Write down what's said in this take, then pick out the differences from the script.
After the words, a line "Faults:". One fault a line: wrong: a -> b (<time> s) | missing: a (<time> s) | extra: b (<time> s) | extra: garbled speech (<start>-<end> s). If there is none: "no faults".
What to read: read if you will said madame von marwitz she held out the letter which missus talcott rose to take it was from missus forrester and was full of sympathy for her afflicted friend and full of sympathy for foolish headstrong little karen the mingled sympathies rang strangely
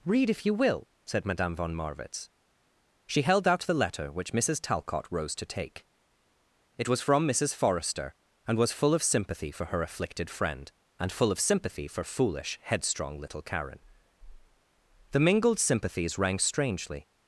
read if you will said madame von marwitz she held out the letter which missus talcott rose to take it was from missus forrester and was full of sympathy for her afflicted friend and full of sympathy for foolish headstrong little karen the mingled sympathies rang strangely
Faults:
no faults